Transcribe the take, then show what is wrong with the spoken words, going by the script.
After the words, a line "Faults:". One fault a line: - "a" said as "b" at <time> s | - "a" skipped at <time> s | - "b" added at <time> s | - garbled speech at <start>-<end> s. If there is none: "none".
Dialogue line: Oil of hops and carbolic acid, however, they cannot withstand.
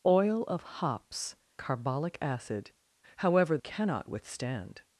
Oil of hops carbolic acid, however, cannot withstand.
Faults:
- "and" skipped at 1.4 s
- "they" skipped at 3.6 s